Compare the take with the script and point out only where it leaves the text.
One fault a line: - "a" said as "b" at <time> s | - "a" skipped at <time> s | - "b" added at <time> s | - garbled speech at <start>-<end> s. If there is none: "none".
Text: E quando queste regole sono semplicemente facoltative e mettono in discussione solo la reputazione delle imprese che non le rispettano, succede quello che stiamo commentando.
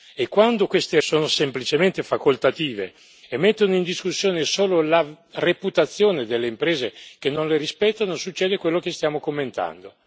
- "regole" skipped at 1.0 s